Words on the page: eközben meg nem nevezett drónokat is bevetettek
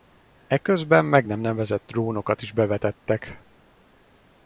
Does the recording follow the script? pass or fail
pass